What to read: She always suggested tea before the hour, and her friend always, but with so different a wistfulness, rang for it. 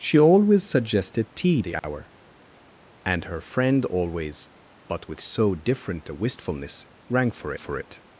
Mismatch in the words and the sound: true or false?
true